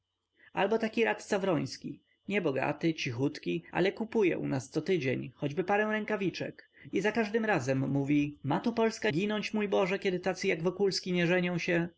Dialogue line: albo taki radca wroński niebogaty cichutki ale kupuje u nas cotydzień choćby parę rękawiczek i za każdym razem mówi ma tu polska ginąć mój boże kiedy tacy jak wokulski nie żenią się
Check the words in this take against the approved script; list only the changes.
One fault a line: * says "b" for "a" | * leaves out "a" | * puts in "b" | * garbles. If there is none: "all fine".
all fine